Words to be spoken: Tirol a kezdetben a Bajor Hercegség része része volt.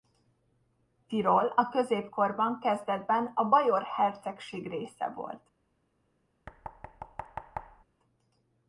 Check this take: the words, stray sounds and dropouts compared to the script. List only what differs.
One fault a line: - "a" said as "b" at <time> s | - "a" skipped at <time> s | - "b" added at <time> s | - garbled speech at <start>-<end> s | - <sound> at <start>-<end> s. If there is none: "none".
- "középkorban" added at 1.7 s
- "része" skipped at 5.1 s
- thud at 6.5-7.8 s